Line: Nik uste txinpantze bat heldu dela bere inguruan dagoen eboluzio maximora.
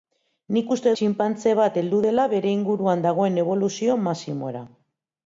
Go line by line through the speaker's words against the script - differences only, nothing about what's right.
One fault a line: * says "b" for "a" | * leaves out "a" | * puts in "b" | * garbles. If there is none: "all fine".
all fine